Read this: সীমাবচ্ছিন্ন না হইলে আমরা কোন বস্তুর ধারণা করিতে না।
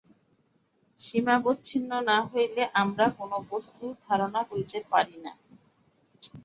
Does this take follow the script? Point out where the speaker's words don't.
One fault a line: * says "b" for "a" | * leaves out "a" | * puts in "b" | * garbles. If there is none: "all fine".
* puts in "পারি"